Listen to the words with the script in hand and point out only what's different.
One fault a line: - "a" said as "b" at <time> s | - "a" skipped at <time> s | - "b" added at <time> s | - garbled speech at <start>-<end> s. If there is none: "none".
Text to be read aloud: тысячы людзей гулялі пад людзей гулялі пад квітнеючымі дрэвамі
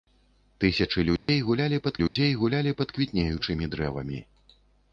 none